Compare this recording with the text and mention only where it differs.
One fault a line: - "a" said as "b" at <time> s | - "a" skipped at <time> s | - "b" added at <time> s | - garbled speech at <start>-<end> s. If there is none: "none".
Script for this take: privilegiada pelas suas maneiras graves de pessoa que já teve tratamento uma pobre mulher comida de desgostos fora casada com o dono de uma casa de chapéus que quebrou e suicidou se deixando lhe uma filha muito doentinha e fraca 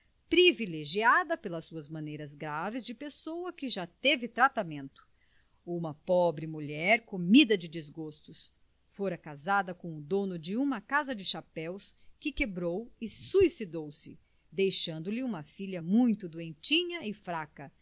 none